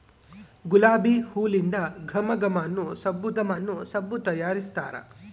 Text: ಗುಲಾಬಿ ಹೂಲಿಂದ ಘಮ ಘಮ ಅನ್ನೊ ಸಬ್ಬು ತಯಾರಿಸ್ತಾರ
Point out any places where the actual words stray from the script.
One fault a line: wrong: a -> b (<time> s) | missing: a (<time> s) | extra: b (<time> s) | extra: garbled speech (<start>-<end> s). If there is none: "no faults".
extra: ಘಮ ಅನ್ನೊ ಸಬ್ಬು (3.4 s)